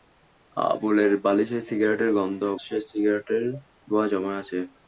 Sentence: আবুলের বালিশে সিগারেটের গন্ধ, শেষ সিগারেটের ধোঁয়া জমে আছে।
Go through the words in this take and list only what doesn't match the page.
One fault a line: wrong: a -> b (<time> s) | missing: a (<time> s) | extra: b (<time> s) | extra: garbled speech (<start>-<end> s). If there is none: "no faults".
no faults